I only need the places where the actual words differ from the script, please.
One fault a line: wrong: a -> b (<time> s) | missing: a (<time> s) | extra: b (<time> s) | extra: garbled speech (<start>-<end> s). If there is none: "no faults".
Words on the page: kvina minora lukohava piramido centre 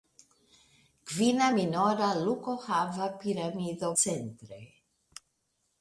no faults